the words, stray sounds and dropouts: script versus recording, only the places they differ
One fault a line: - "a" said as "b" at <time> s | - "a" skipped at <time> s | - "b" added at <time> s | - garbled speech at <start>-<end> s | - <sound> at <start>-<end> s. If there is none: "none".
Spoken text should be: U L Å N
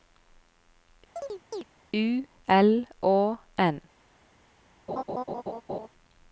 - chirp at 1.2-1.6 s
- laugh at 4.9-5.9 s